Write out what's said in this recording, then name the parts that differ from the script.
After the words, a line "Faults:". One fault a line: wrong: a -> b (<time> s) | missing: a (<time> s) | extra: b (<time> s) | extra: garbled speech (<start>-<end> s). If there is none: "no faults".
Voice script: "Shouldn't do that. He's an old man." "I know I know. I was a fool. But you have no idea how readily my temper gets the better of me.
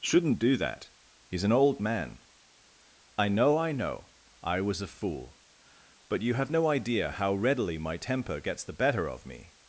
"Shouldn't do that. He's an old man." "I know I know. I was a fool. But you have no idea how readily my temper gets the better of me.
Faults:
no faults